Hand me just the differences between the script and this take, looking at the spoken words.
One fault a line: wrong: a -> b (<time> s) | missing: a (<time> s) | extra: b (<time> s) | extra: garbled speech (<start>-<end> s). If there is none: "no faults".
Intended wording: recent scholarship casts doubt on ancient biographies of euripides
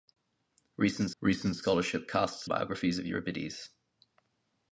extra: recent (1.2 s)
missing: doubt on ancient (2.5 s)